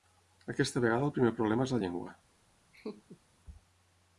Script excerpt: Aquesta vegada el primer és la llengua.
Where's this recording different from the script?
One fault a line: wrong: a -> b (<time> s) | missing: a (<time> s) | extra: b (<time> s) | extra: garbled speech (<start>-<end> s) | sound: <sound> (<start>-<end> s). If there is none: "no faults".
extra: problema (1.4 s)
sound: laugh (2.7-3.2 s)